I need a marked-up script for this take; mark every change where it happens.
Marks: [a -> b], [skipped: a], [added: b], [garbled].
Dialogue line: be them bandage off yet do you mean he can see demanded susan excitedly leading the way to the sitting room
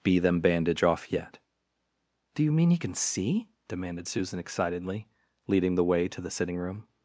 be them bandage off yet do you mean he can see demanded susan excitedly leading the way to the sitting room